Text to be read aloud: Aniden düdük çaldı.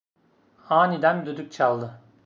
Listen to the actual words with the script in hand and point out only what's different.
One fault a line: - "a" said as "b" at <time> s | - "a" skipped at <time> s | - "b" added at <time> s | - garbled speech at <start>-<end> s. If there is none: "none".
none